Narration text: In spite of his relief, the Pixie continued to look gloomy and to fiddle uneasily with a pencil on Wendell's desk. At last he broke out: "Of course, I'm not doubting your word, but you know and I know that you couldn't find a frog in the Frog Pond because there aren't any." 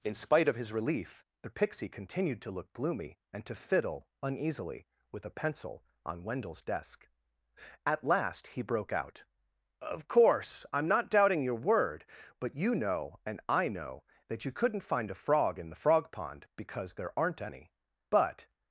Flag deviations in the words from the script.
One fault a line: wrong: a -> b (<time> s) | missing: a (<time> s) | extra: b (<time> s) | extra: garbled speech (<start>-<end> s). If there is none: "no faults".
extra: But (18.1 s)